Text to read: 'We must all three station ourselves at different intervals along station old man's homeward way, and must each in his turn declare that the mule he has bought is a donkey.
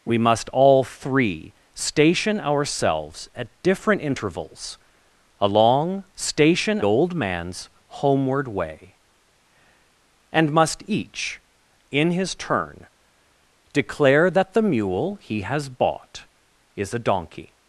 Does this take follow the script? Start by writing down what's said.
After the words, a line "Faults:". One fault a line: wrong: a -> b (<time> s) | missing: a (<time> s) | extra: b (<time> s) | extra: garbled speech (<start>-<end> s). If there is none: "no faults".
'We must all three station ourselves at different intervals along station old man's homeward way, and must each in his turn declare that the mule he has bought is a donkey.
Faults:
no faults